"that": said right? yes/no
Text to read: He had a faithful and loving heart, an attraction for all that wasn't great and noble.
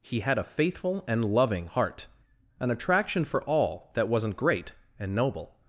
yes